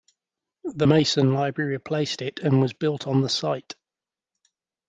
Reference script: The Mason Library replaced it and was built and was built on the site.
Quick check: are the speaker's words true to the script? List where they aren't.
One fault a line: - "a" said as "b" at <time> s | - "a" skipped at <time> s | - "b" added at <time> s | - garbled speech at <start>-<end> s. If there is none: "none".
- "and was built" skipped at 3.1 s